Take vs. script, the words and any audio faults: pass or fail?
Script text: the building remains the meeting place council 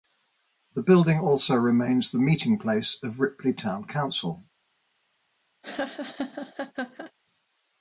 fail